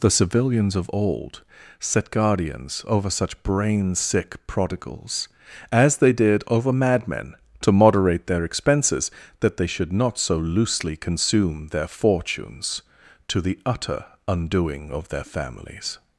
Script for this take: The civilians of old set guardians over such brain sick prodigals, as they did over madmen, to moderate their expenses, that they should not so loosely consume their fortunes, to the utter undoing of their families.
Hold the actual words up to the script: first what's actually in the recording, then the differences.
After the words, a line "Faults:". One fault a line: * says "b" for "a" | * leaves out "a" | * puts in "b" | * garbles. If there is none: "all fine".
The civilians of old set guardians over such brain sick prodigals, as they did over madmen, to moderate their expenses, that they should not so loosely consume their fortunes, to the utter undoing of their families.
Faults:
all fine